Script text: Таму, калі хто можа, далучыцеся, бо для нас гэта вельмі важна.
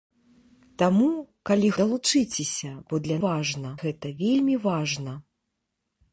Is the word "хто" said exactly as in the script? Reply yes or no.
no